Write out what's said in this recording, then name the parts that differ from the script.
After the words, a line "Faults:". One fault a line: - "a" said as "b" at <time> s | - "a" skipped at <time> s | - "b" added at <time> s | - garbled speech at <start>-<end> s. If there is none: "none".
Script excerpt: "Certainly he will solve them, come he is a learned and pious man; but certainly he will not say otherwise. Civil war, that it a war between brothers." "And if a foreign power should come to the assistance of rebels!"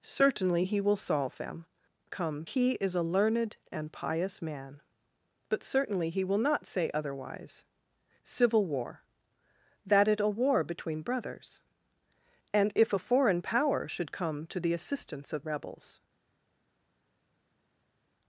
"Certainly he will solve them, come he is a learned and pious man; but certainly he will not say otherwise. Civil war, that it a war between brothers." "And if a foreign power should come to the assistance of rebels!"
Faults:
none